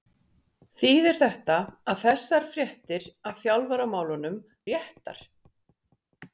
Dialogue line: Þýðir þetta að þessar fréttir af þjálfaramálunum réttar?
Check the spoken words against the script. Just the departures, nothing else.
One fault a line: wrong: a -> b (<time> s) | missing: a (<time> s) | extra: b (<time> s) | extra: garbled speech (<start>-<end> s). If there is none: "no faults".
no faults